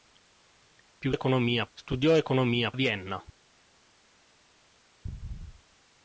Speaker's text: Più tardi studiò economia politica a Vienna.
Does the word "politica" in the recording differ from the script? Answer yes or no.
yes